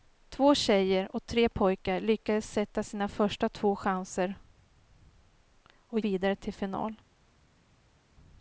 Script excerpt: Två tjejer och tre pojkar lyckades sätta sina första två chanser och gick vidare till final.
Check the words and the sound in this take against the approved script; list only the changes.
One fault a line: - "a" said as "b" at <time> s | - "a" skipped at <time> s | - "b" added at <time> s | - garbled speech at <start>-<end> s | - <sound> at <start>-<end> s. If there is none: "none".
- "gick" skipped at 6.0 s